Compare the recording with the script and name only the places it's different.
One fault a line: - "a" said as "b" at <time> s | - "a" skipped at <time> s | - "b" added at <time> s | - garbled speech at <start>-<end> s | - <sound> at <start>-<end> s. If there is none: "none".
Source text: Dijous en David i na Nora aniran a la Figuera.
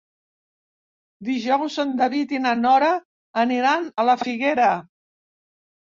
none